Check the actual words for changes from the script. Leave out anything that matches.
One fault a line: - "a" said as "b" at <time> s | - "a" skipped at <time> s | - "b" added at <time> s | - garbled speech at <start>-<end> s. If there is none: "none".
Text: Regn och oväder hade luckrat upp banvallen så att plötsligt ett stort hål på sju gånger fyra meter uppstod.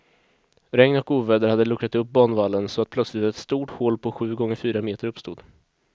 none